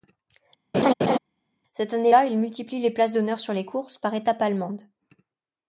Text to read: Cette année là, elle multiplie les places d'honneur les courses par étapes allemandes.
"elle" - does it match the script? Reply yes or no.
no